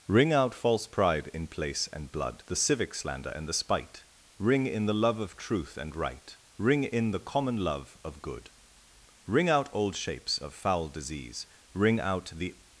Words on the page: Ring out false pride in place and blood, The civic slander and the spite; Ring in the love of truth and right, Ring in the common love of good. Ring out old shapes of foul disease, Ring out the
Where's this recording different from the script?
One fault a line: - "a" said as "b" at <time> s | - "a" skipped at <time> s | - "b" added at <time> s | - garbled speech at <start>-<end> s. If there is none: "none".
none